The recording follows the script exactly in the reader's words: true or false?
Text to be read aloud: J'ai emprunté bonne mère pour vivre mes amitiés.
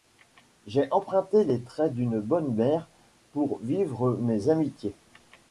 false